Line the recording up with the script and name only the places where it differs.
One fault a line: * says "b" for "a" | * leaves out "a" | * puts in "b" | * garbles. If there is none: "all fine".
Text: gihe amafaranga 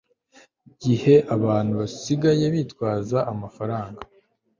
* puts in "abantu basigaye bitwaza"